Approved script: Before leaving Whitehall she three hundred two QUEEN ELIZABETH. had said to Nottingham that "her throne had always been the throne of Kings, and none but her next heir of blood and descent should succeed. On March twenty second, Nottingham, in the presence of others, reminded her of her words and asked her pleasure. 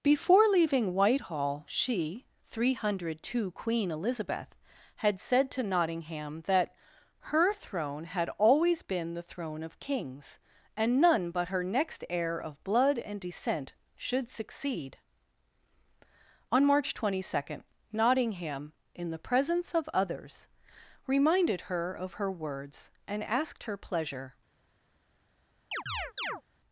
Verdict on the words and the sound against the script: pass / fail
fail